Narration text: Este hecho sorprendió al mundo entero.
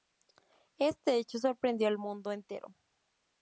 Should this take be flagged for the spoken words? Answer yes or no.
no